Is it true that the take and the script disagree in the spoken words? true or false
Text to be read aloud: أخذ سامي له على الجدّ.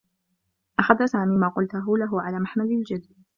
true